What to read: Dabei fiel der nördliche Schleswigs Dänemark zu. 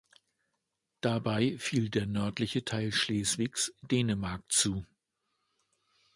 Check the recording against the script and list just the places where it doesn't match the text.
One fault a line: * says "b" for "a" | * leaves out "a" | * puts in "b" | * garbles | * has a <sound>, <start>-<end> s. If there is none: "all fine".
* puts in "Teil"